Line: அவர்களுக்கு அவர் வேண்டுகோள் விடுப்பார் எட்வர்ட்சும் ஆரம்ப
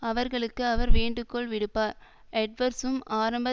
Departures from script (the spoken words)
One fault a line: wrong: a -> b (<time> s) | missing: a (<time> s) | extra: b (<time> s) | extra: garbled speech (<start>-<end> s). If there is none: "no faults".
no faults